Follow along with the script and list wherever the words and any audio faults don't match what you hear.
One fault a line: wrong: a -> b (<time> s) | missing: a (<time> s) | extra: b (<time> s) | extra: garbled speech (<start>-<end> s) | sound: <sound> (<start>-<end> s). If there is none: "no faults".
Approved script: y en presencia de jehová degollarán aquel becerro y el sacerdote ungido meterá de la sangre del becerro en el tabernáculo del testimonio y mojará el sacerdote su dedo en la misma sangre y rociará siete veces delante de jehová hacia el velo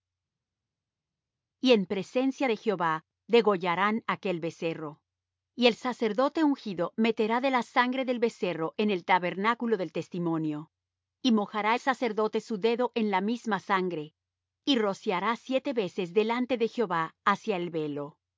no faults